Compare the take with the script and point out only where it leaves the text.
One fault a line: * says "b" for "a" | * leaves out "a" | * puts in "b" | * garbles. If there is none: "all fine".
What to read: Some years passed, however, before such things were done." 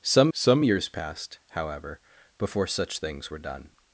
* puts in "some"